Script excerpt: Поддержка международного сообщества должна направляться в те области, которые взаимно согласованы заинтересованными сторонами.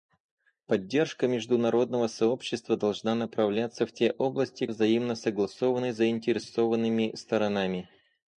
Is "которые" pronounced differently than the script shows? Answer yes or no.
yes